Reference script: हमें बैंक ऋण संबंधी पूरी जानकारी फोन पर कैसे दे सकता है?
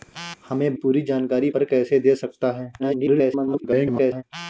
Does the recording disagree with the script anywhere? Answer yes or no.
yes